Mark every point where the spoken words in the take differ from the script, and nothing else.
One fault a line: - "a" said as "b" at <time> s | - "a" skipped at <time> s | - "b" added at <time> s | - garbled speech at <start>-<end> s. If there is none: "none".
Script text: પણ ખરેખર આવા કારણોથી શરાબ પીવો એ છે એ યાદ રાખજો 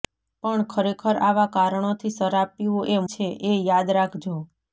none